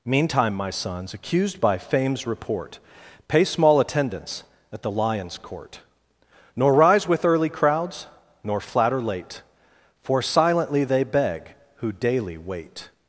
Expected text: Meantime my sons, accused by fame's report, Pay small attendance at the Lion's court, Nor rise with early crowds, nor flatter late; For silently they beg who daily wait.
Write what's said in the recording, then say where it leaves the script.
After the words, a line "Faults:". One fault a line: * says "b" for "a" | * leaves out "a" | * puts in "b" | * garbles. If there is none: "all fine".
Meantime my sons, accused by fame's report, Pay small attendance at the Lion's court, Nor rise with early crowds, nor flatter late; For silently they beg who daily wait.
Faults:
all fine